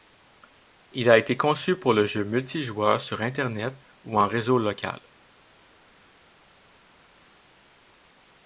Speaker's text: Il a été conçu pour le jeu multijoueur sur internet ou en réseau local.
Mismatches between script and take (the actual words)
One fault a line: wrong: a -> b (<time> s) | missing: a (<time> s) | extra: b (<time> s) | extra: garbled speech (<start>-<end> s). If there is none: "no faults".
no faults